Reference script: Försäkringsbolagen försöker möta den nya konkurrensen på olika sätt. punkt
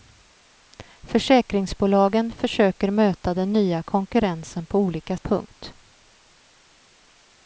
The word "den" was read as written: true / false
true